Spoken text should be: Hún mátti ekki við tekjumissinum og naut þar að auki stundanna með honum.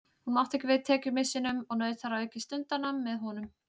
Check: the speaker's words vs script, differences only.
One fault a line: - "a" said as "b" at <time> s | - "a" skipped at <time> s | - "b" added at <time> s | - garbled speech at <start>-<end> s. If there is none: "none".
none